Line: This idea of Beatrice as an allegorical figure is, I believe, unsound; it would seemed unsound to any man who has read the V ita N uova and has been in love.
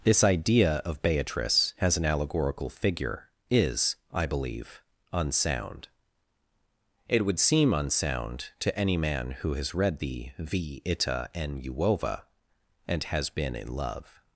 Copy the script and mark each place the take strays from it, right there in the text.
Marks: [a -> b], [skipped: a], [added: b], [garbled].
This idea of Beatrice as an allegorical figure is, I believe, unsound; it would [seemed -> seem] unsound to any man who has read the V ita N uova and has been in love.